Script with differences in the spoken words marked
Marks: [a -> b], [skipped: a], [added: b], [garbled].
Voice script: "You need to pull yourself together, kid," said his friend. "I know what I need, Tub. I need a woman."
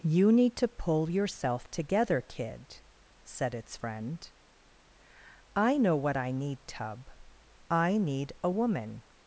"You need to pull yourself together, kid," said [his -> its] friend. "I know what I need, Tub. I need a woman."